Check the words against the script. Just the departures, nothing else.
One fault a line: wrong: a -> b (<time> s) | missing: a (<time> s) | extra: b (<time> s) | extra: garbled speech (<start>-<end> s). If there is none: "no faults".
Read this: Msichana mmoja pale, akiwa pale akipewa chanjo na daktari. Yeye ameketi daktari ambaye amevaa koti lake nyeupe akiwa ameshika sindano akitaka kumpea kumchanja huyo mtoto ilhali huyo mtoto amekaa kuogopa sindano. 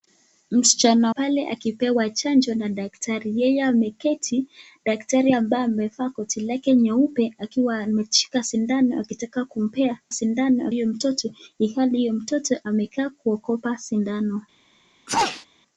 missing: mmoja (1.1 s)
missing: akiwa pale (1.5 s)
wrong: kumchanja -> sindano (10.1 s)